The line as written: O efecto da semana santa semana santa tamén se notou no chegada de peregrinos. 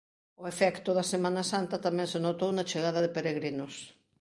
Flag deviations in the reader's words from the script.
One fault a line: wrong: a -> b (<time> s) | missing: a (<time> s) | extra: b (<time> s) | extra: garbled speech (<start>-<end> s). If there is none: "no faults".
missing: semana santa (1.8 s)
wrong: no -> na (2.5 s)